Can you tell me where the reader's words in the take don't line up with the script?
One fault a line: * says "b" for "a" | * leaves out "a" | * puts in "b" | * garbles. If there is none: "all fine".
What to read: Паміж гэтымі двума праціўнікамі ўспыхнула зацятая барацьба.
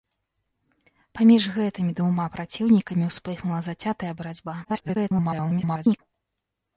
* garbles